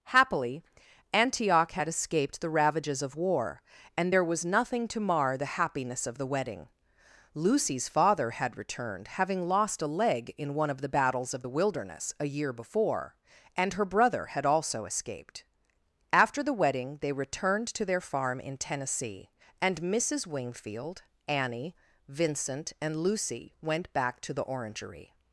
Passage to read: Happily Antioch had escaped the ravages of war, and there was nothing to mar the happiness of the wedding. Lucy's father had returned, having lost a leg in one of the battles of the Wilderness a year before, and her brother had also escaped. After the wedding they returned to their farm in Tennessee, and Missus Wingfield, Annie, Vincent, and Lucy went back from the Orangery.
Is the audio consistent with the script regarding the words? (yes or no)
no